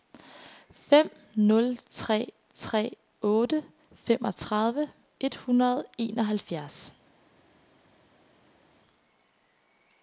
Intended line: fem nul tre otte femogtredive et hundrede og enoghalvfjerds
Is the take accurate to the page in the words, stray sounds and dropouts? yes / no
no